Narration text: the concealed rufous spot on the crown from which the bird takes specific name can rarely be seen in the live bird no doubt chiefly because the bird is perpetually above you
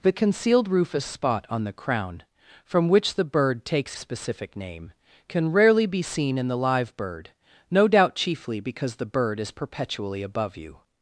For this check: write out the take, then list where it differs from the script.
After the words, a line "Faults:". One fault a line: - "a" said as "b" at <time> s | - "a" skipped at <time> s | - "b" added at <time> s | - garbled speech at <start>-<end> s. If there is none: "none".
the concealed rufous spot on the crown from which the bird takes specific name can rarely be seen in the live bird no doubt chiefly because the bird is perpetually above you
Faults:
none